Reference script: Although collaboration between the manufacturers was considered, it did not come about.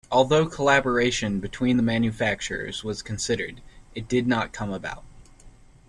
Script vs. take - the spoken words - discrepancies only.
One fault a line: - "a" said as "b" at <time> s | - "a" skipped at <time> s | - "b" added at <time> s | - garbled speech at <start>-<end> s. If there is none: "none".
none